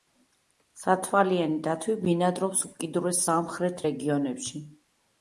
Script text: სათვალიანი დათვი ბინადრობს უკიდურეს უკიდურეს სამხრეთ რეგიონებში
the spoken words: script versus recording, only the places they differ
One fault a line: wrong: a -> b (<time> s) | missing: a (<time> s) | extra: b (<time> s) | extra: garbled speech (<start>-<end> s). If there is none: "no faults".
missing: უკიდურეს (3.2 s)